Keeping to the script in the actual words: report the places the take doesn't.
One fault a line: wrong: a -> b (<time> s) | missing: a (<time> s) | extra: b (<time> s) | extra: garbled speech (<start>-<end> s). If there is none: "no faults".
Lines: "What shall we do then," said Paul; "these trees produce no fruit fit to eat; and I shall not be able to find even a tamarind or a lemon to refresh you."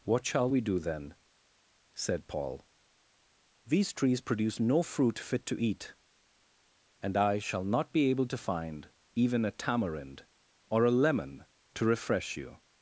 no faults